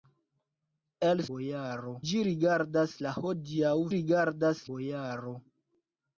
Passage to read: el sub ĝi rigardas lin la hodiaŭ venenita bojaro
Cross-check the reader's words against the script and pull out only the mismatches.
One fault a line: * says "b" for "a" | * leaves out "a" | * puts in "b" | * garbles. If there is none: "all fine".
* says "bojaro" for "sub"
* leaves out "lin"
* says "rigardas" for "venenita"